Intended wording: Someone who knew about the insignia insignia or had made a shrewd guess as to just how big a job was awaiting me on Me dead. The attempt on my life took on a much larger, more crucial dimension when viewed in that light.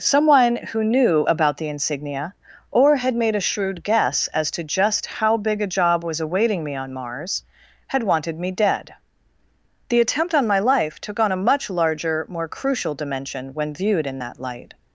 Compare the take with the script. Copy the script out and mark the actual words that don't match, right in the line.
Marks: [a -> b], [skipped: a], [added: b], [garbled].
Someone who knew about the insignia [skipped: insignia] or had made a shrewd guess as to just how big a job was awaiting me on [added: Mars had wanted] Me dead. The attempt on my life took on a much larger, more crucial dimension when viewed in that light.